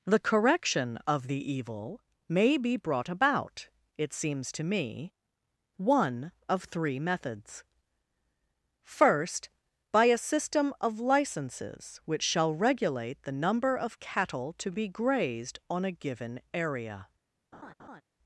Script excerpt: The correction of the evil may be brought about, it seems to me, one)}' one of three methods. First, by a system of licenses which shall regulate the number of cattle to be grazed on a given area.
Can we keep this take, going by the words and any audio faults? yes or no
no